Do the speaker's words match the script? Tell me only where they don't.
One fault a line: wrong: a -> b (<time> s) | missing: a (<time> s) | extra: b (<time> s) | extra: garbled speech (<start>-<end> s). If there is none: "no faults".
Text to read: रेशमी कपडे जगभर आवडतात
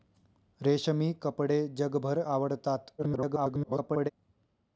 extra: garbled speech (3.0-4.1 s)